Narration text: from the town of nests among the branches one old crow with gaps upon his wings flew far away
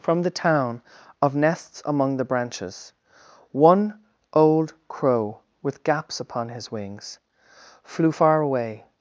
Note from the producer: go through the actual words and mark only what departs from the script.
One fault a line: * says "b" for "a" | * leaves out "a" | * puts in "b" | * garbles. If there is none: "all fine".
all fine